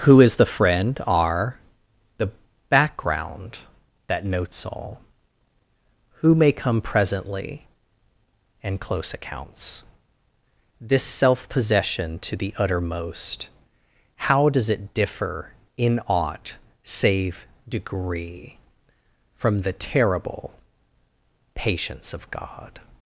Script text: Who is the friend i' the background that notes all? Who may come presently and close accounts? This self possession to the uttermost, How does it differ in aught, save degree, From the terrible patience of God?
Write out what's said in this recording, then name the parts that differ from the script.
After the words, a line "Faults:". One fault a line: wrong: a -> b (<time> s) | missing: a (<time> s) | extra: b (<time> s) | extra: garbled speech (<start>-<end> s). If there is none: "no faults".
Who is the friend are' the background that notes all? Who may come presently and close accounts? This self possession to the uttermost, How does it differ in aught, save degree, From the terrible patience of God?
Faults:
wrong: i -> are (1.1 s)